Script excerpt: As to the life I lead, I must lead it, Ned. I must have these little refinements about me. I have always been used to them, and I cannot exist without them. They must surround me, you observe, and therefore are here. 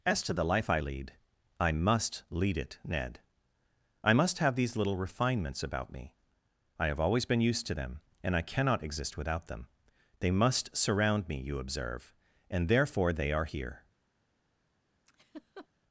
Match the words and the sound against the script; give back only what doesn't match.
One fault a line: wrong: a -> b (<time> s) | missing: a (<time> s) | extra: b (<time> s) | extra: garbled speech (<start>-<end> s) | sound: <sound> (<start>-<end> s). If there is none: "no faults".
extra: they (13.1 s)
sound: laugh (15.1-15.7 s)